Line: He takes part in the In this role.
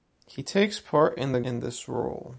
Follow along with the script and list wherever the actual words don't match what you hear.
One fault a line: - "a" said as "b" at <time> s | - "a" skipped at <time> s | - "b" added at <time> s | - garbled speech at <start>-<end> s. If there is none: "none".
none